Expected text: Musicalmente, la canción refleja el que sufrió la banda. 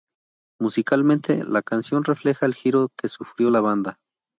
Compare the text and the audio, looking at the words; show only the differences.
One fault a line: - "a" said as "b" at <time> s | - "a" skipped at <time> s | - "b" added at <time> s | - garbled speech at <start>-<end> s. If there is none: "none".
- "giro" added at 2.5 s